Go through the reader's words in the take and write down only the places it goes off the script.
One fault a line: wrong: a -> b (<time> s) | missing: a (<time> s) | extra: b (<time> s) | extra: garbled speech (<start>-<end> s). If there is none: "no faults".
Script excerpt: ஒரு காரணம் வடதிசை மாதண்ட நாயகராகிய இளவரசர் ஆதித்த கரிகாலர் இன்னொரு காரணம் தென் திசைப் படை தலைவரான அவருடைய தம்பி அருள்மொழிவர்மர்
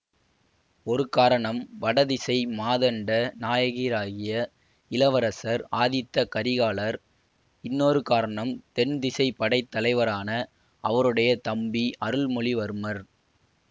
no faults